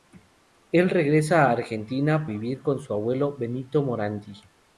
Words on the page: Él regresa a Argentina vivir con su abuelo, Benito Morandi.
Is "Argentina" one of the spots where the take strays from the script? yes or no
no